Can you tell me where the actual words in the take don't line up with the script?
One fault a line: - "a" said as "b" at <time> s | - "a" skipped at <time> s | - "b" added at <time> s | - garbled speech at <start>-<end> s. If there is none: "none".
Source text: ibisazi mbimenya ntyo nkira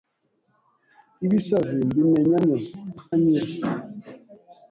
none